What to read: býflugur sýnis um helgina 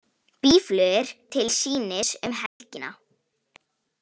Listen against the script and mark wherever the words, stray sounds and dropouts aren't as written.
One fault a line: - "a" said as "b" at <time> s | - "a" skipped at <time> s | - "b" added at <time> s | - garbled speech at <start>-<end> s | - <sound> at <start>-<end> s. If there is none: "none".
- "til" added at 1.4 s
- dropout at 2.5-2.6 s